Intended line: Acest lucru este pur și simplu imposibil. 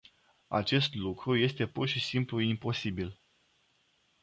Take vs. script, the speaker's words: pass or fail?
pass